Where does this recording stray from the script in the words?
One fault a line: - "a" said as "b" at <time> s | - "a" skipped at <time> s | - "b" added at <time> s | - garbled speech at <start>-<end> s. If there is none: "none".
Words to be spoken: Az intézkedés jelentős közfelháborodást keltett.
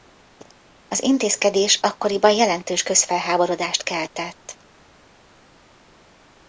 - "akkoriban" added at 1.8 s